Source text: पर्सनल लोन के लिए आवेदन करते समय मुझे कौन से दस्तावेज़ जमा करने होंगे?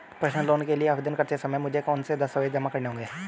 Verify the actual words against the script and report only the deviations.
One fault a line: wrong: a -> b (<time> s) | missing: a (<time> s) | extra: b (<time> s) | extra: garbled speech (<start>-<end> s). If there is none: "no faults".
no faults